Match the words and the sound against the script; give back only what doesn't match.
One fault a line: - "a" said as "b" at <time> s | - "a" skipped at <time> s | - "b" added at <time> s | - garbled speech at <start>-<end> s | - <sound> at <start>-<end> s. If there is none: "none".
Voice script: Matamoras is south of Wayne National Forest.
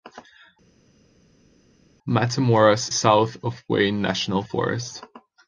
- "is" skipped at 2.9 s